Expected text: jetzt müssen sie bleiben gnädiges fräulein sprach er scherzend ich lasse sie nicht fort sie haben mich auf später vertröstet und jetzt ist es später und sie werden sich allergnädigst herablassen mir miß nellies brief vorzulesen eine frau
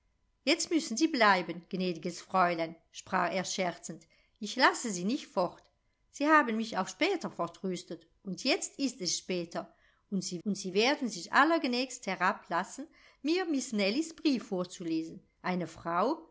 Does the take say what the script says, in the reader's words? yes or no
no